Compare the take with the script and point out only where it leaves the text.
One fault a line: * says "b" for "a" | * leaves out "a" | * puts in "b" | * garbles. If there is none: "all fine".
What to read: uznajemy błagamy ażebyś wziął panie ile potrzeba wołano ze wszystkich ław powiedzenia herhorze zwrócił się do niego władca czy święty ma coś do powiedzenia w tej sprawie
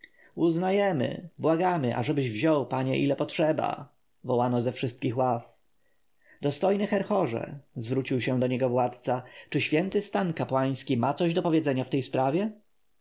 * says "dostojny" for "powiedzenia"
* puts in "stan kapłański"